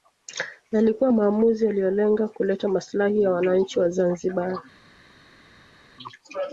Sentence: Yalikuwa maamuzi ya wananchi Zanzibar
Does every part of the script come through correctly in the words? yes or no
no